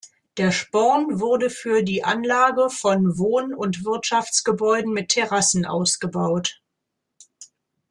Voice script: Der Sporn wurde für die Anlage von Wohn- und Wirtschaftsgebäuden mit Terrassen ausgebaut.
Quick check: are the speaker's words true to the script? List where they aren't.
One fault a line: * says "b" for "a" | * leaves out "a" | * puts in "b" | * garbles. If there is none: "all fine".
all fine